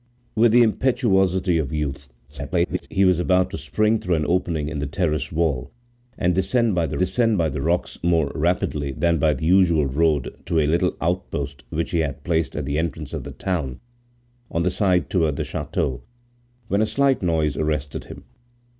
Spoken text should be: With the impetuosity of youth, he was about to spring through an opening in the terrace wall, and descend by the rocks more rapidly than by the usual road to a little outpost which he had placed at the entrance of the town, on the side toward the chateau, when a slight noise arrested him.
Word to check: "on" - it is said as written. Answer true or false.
true